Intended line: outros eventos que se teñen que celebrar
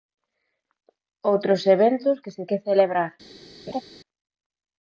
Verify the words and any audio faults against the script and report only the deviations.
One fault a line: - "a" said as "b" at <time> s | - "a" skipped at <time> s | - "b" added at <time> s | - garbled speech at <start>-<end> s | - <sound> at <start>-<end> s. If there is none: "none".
- "teñen" skipped at 2.4 s
- laugh at 3.7-3.8 s